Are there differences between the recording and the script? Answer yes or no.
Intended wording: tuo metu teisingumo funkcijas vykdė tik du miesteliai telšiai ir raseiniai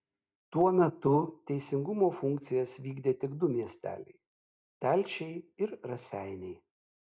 no